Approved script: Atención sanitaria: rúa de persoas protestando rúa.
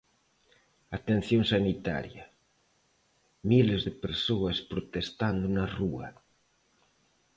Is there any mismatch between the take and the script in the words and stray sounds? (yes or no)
yes